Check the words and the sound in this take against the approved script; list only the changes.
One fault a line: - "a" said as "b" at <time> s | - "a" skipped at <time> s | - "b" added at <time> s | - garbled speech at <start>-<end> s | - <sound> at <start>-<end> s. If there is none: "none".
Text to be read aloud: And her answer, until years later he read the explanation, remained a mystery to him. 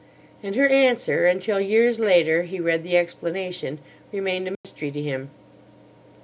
- dropout at 4.6-4.6 s